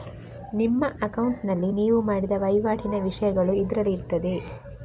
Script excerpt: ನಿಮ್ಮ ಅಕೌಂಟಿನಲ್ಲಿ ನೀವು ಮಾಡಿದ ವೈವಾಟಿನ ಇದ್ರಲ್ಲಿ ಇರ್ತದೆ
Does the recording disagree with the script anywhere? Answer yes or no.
yes